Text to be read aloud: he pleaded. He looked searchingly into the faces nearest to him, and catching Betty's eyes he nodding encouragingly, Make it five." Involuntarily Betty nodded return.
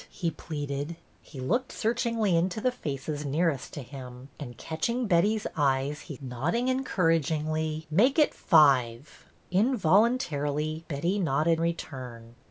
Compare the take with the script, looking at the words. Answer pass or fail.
pass